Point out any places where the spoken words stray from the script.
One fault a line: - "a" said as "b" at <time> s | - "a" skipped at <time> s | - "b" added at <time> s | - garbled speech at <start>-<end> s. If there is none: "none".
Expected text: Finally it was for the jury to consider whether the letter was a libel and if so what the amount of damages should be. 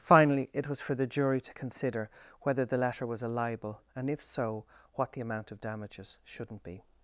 - "should" said as "shouldn't" at 6.2 s